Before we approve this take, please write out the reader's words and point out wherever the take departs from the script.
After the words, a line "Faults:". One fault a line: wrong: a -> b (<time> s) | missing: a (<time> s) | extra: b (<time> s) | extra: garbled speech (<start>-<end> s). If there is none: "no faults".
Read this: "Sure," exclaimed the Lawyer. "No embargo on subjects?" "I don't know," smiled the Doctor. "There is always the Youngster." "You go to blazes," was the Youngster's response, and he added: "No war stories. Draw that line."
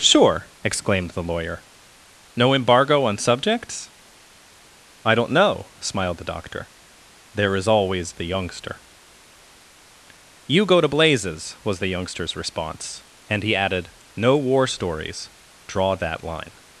"Sure," exclaimed the Lawyer. "No embargo on subjects?" "I don't know," smiled the Doctor. "There is always the Youngster." "You go to blazes," was the Youngster's response, and he added: "No war stories. Draw that line."
Faults:
no faults